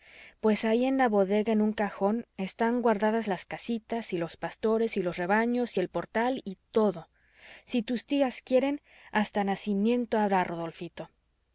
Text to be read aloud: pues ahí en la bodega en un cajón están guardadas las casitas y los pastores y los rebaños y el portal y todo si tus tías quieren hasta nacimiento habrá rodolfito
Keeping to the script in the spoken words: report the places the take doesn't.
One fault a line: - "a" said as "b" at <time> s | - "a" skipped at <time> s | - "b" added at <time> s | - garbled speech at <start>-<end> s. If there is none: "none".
none